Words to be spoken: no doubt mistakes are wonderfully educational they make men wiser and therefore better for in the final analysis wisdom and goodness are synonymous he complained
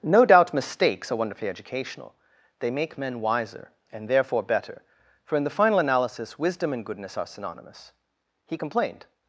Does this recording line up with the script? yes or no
yes